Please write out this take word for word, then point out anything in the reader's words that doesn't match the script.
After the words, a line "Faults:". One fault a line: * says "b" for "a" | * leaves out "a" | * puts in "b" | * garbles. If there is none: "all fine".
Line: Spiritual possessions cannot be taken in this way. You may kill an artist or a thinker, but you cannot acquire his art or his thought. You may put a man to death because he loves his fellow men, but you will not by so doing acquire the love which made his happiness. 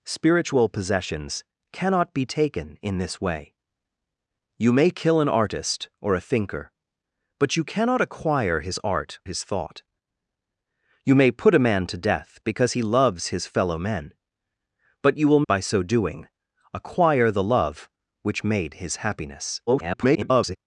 Spiritual possessions cannot be taken in this way. You may kill an artist or a thinker, but you cannot acquire his art his thought. You may put a man to death because he loves his fellow men, but you will by so doing acquire the love which made his happiness. [garbled]
Faults:
* leaves out "or"
* leaves out "not"
* garbles